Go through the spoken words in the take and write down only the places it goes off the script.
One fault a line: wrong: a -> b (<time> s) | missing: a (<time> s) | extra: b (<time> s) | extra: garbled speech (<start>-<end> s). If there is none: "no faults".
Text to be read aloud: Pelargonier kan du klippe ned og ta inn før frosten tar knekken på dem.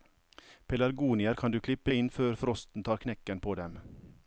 missing: ned og ta (1.9 s)